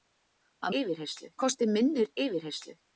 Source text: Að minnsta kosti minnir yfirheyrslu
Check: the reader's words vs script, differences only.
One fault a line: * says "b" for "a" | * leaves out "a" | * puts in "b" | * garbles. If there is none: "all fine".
* says "yfirheyrslu" for "minnsta"